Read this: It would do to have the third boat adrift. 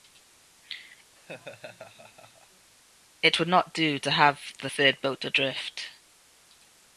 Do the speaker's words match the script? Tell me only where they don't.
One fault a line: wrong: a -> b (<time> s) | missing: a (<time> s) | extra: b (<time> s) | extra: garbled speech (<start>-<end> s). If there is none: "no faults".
extra: not (3.5 s)